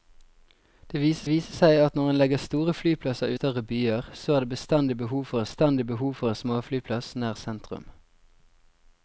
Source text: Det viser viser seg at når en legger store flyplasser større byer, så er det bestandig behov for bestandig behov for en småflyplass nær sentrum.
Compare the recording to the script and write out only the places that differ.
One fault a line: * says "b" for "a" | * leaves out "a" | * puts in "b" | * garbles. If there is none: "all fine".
all fine